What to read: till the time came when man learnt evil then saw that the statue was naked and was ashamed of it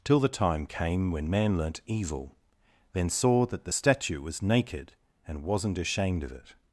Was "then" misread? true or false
false